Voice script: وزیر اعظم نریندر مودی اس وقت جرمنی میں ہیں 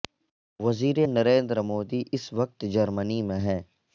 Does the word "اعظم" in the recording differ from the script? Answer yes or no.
yes